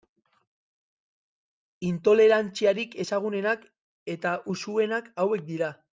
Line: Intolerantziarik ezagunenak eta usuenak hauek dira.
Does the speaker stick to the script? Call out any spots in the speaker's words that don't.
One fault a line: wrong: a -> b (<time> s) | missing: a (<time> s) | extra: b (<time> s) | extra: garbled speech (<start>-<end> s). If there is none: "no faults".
no faults